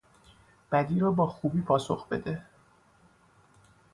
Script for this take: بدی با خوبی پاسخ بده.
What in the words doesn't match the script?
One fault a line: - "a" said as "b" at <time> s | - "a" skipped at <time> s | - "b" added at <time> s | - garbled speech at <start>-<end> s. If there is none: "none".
- "را" added at 1.0 s